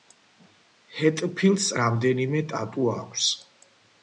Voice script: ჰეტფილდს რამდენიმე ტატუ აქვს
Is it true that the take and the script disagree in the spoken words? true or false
false